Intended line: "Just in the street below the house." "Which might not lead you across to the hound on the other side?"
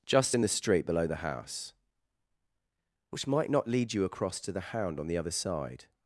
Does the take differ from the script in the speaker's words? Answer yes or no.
no